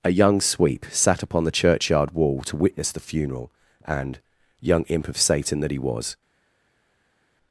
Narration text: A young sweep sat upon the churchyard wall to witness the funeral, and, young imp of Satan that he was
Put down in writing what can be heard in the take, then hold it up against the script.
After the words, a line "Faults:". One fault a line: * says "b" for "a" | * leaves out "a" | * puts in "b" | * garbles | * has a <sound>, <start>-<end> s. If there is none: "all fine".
A young sweep sat upon the churchyard wall to witness the funeral, and, young imp of Satan that he was
Faults:
all fine